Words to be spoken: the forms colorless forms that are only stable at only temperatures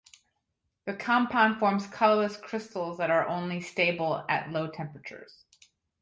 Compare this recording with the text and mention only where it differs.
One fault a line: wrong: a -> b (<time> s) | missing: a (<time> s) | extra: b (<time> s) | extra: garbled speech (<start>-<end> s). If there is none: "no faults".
extra: compound (0.9 s)
wrong: forms -> crystals (2.4 s)
wrong: only -> low (4.5 s)